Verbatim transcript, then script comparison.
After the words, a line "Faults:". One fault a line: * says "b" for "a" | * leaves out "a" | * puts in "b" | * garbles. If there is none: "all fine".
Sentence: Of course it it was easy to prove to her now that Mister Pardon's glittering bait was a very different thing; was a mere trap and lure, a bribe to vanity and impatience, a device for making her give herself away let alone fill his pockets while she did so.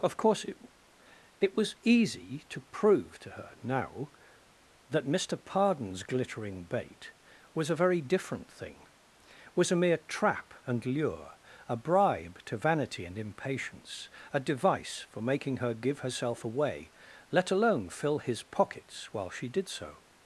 Of course it it was easy to prove to her now that Mister Pardon's glittering bait was a very different thing; was a mere trap and lure, a bribe to vanity and impatience, a device for making her give herself away let alone fill his pockets while she did so.
Faults:
all fine